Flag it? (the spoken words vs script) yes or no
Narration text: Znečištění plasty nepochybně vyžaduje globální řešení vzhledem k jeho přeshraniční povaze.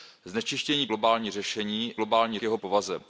yes